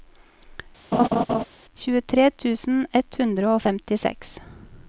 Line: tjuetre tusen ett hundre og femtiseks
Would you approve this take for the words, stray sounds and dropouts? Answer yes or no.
no